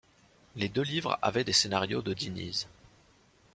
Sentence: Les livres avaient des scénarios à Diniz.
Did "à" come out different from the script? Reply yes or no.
yes